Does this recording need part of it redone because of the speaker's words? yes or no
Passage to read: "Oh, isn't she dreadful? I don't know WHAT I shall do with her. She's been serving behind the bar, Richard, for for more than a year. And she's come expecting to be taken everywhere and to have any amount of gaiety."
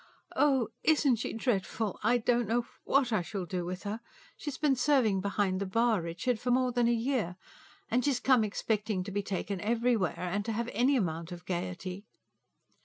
yes